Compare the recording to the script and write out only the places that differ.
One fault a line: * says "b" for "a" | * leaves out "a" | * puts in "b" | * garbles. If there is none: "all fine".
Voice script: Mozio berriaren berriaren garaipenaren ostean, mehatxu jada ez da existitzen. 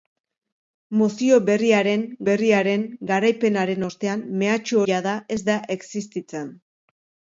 all fine